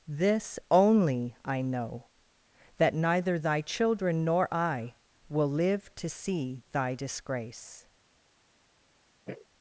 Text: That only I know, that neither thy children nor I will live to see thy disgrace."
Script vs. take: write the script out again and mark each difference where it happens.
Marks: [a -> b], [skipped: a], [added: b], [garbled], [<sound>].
[That -> This] only I know, that neither thy children nor I will live to see thy disgrace." [sniff]